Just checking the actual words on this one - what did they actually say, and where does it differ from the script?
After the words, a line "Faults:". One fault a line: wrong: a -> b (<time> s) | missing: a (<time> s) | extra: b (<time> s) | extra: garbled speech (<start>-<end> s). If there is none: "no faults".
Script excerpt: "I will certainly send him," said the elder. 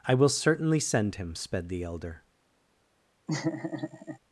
"I will certainly send him," sped the elder.
Faults:
wrong: said -> sped (1.4 s)